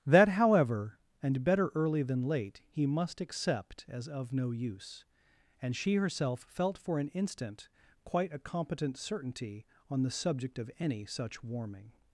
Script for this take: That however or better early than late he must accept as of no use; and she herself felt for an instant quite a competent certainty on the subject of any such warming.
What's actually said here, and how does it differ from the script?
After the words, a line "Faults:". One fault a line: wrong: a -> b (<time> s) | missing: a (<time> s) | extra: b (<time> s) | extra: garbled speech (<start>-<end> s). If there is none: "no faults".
That however and better early than late he must accept as of no use; and she herself felt for an instant quite a competent certainty on the subject of any such warming.
Faults:
wrong: or -> and (1.2 s)